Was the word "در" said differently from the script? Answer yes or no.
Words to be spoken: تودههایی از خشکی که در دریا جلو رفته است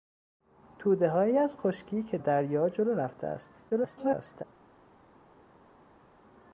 yes